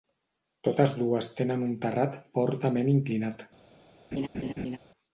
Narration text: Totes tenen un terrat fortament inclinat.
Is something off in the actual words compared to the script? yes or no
yes